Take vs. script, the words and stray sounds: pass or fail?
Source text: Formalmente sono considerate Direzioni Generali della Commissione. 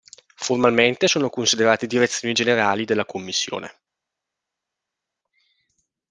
pass